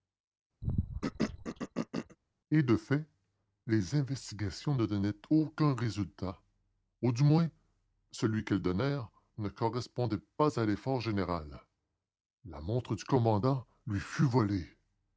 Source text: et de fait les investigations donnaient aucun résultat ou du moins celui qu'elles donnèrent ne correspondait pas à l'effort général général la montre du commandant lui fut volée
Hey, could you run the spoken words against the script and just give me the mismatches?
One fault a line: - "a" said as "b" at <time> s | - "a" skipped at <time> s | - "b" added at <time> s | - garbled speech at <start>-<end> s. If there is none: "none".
- "ne" added at 4.8 s
- "général" skipped at 11.6 s